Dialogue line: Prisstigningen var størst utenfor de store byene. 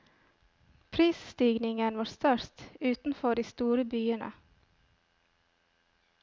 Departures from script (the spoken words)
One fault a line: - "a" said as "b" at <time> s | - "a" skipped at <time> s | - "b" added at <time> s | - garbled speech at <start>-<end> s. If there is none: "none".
none